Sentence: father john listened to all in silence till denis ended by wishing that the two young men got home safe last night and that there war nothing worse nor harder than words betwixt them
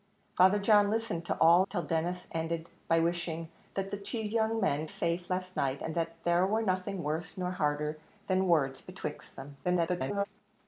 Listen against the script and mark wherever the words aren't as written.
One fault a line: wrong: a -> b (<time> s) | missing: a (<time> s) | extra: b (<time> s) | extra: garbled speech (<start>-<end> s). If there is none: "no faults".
missing: in silence (1.7 s)
missing: got home (4.9 s)
extra: garbled speech (9.6-10.3 s)